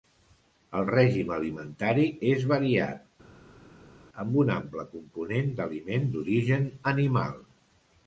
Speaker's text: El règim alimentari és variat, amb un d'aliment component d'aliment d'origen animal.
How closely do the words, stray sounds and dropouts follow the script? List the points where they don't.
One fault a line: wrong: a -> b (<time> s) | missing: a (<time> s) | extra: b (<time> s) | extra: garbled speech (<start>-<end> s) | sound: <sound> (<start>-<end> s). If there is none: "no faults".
wrong: d'aliment -> ample (4.6 s)